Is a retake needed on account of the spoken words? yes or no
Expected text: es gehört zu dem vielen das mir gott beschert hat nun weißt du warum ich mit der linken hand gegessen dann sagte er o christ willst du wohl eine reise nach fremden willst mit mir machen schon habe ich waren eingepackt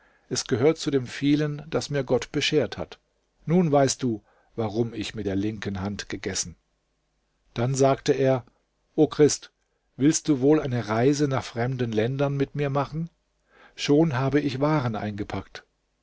yes